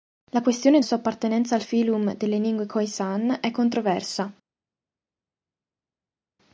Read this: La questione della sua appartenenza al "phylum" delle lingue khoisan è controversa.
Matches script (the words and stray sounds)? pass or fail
fail